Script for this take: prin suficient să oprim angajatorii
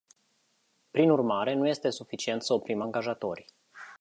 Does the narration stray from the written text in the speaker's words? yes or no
yes